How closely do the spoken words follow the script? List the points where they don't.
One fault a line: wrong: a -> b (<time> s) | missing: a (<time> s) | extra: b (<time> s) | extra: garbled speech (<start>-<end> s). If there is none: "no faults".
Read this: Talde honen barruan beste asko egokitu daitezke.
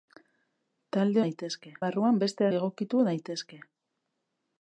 wrong: honen -> daitezke (1.2 s)
missing: asko (2.5 s)